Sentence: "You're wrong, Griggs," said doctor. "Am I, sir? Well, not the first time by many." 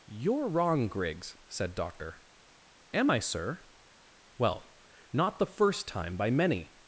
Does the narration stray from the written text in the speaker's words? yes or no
no